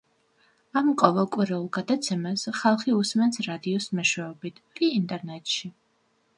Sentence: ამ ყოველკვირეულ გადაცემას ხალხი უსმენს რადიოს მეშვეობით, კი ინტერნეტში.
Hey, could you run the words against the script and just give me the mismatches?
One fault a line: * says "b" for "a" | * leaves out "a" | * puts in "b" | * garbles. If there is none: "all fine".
all fine